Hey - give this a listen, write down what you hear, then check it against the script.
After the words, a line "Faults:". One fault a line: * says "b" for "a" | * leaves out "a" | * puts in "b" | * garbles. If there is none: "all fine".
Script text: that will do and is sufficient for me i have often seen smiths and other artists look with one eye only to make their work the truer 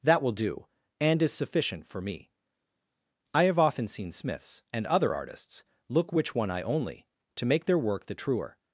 that will do and is sufficient for me i have often seen smiths and other artists look which one eye only to make their work the truer
Faults:
* says "which" for "with"